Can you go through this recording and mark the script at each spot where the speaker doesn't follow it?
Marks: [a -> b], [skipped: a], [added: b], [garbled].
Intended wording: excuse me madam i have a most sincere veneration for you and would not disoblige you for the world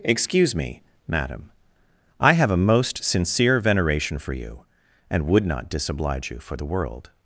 excuse me madam i have a most sincere veneration for you and would not disoblige you for the world